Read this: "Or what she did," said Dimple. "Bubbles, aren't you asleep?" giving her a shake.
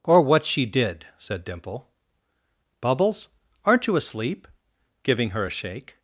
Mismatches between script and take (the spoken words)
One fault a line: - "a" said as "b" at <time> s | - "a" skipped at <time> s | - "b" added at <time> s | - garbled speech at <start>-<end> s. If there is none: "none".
none